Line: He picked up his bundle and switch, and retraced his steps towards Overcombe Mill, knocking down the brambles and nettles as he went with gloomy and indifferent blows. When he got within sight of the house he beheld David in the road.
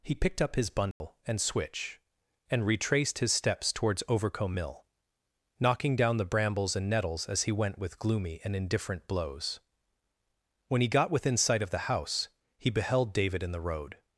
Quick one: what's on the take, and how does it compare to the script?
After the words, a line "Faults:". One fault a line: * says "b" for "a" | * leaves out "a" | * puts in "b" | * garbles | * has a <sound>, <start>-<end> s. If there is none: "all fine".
He picked up his bundle and switch, and retraced his steps towards Overcombe Mill, knocking down the brambles and nettles as he went with gloomy and indifferent blows. When he got within sight of the house he beheld David in the road.
Faults:
* has a dropout, 0.9-1.0 s